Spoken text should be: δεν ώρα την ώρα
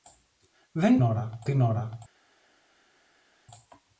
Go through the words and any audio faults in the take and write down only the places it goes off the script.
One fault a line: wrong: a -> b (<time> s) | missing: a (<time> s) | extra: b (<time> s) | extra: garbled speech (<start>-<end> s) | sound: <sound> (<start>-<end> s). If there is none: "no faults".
no faults